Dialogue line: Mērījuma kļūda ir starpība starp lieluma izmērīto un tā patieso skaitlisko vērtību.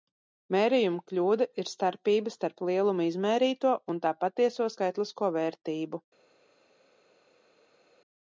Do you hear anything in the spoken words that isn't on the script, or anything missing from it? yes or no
no